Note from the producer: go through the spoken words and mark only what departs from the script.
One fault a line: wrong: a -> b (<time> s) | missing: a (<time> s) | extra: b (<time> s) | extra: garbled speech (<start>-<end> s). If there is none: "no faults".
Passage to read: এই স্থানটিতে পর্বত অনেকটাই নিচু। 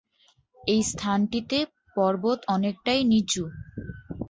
no faults